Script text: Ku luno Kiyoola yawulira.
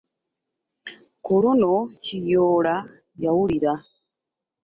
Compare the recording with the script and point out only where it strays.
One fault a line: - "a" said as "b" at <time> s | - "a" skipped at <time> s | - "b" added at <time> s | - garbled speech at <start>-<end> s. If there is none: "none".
none